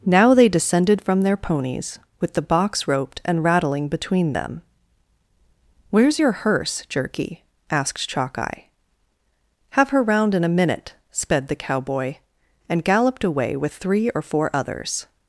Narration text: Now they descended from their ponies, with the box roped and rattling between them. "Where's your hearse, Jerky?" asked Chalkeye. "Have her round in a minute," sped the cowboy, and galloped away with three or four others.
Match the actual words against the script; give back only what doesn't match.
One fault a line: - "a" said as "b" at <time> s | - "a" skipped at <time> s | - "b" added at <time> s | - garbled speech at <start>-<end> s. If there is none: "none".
none